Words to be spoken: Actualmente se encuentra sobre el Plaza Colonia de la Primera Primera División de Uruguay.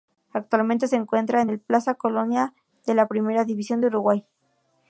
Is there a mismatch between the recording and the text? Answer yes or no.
yes